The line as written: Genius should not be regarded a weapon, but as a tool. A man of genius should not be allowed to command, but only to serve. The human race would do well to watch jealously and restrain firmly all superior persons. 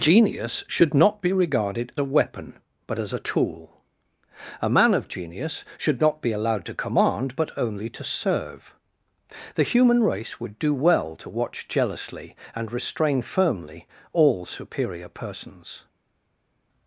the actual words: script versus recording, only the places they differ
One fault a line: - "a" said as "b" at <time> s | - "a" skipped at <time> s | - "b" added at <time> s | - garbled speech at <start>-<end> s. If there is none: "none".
none